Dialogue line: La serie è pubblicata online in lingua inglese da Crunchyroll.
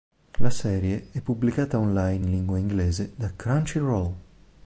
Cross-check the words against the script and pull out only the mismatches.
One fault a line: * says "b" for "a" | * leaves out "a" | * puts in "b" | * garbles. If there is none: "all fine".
all fine